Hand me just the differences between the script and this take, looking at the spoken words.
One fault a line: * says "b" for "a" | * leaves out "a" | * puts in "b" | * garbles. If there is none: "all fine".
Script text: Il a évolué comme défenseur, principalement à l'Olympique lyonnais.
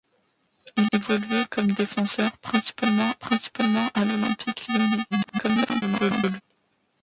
* leaves out "a"
* puts in "principalement"
* garbles